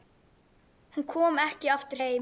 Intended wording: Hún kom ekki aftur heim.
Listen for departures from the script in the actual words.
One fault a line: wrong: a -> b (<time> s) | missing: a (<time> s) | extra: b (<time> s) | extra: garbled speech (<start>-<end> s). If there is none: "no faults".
no faults